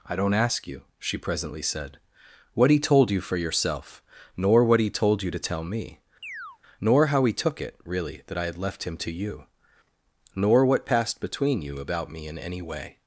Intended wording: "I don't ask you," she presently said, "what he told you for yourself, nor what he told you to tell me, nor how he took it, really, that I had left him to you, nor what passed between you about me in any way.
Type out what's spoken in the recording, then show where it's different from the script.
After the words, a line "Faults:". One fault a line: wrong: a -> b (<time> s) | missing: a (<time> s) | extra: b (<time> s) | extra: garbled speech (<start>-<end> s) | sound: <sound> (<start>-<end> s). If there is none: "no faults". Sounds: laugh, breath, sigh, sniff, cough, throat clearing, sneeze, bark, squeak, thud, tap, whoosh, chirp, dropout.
"I don't ask you," she presently said, "what he told you for yourself, nor what he told you to tell me, nor how he took it, really, that I had left him to you, nor what passed between you about me in any way.
Faults:
sound: chirp (6.2-6.6 s)